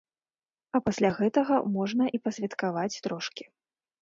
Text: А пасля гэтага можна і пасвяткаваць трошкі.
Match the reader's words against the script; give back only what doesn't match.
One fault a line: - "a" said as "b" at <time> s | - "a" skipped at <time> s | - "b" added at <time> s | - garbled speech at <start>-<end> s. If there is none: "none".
none